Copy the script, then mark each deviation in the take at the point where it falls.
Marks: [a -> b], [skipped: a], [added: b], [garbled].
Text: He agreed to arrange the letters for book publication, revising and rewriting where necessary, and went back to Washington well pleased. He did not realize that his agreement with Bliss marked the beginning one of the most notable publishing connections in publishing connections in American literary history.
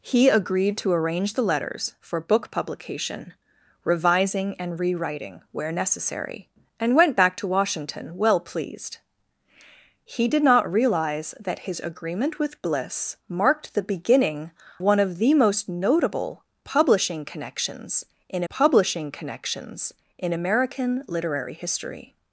He agreed to arrange the letters for book publication, revising and rewriting where necessary, and went back to Washington well pleased. He did not realize that his agreement with Bliss marked the beginning one of the most notable publishing connections in publishing connections in American literary history.